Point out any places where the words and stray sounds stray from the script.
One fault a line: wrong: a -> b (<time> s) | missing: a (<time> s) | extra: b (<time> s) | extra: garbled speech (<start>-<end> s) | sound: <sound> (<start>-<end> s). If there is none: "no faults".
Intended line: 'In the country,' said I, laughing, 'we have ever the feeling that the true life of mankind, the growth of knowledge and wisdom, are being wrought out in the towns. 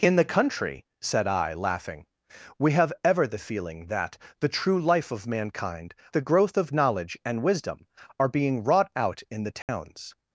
sound: dropout (9.6-9.7 s)